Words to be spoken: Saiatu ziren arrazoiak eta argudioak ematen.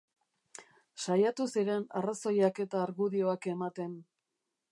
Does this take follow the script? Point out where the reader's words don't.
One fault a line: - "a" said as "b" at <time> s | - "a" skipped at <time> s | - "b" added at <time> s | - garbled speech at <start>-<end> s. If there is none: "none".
none